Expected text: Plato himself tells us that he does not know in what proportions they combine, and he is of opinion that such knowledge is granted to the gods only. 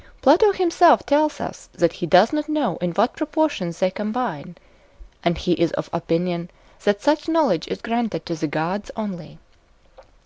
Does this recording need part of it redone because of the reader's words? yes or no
no